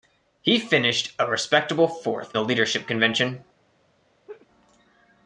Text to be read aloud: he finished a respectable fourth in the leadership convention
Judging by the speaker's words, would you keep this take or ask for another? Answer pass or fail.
fail